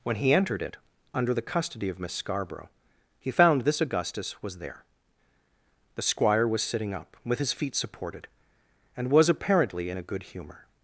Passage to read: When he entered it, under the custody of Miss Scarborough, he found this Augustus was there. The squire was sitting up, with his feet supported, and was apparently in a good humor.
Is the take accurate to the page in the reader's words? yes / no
yes